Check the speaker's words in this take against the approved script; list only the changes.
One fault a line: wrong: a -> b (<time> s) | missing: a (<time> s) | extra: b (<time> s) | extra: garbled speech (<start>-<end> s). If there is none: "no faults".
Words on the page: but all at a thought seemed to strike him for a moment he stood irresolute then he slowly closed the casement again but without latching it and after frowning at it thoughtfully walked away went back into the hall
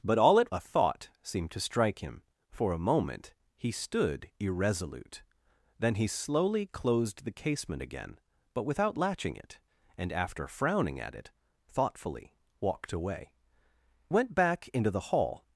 no faults